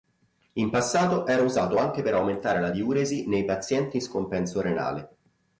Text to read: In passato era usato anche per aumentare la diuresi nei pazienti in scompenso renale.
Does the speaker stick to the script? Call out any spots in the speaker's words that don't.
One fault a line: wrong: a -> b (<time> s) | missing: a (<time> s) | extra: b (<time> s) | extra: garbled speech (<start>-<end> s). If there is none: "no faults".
no faults